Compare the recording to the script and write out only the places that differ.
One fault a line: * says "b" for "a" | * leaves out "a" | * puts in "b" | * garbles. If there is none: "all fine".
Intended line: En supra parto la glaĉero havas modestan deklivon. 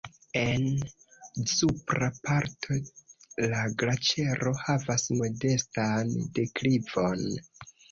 all fine